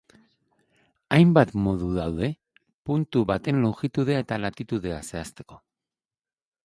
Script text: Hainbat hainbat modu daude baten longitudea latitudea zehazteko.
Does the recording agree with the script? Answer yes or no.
no